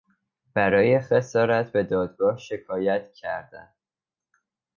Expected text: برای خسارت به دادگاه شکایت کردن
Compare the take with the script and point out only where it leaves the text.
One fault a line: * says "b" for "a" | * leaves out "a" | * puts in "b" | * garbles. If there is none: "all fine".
all fine